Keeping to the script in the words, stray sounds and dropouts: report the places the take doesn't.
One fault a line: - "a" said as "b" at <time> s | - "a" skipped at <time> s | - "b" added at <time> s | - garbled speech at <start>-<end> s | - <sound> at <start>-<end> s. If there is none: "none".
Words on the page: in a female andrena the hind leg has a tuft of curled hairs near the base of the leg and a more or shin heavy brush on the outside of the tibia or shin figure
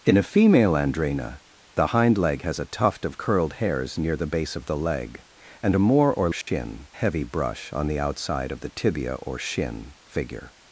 - dropout at 6.4-6.5 s